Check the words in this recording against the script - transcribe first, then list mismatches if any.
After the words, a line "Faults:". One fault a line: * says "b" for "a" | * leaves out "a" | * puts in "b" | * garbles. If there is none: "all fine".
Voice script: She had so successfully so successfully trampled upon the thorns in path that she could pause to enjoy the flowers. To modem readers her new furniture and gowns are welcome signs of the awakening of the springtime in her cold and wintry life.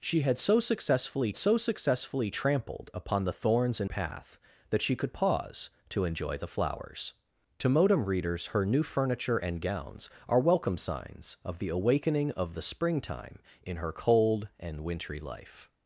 She had so successfully so successfully trampled upon the thorns in path that she could pause to enjoy the flowers. To modem readers her new furniture and gowns are welcome signs of the awakening of the springtime in her cold and wintry life.
Faults:
all fine